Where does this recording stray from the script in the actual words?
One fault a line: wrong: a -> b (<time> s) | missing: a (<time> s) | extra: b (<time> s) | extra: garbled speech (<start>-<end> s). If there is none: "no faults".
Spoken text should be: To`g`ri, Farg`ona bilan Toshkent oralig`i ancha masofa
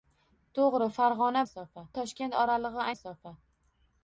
wrong: bilan -> masofa (1.4 s)
missing: ancha (2.9 s)